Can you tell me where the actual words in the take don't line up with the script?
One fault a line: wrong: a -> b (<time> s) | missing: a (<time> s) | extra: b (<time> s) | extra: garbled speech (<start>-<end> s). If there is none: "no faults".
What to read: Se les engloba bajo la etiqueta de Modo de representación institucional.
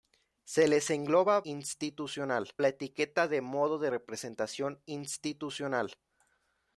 wrong: bajo -> institucional (1.4 s)